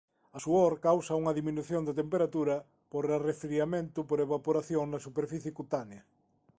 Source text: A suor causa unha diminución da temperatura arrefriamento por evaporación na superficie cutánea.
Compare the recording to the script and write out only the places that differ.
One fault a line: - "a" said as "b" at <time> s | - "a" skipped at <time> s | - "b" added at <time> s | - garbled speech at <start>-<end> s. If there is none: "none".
- "por" added at 2.9 s